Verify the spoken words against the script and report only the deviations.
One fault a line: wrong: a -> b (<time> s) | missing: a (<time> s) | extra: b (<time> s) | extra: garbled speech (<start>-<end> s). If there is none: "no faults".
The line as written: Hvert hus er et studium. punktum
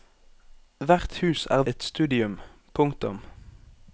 no faults